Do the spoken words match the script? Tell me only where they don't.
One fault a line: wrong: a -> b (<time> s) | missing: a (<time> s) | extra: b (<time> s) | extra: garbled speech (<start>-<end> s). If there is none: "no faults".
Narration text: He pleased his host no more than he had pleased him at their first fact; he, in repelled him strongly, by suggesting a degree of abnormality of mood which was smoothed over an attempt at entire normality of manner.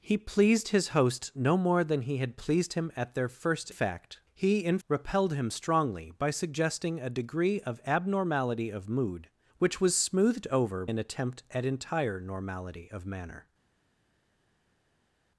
no faults